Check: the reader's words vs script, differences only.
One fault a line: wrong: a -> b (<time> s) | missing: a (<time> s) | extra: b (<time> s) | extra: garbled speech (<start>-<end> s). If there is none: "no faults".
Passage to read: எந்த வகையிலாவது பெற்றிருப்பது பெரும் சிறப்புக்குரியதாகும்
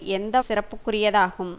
missing: வகையிலாவது பெற்றிருப்பது பெரும் (0.4 s)